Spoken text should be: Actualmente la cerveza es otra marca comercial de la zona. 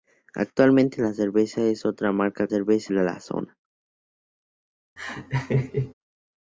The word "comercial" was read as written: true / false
false